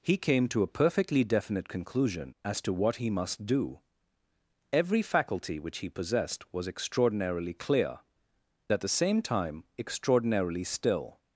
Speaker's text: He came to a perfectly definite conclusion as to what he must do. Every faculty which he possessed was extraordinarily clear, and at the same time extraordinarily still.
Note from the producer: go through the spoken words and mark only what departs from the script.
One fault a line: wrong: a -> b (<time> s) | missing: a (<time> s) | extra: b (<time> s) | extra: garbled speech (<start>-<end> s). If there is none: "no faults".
missing: and (8.0 s)